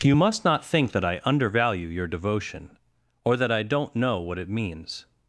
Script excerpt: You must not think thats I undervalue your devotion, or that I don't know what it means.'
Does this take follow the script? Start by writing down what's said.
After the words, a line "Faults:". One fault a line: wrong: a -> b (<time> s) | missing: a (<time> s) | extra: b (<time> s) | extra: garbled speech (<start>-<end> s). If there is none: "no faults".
You must not think that I undervalue your devotion, or that I don't know what it means.'
Faults:
wrong: thats -> that (0.9 s)